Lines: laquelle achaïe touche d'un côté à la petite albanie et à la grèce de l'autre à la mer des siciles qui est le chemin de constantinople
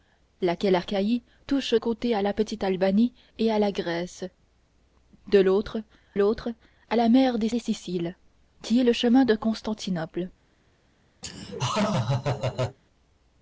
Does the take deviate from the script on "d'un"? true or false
true